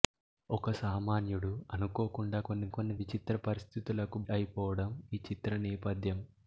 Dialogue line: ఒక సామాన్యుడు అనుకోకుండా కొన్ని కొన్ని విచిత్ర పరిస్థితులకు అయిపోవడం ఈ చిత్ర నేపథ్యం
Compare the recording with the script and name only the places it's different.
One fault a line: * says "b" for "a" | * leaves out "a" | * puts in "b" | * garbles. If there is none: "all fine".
all fine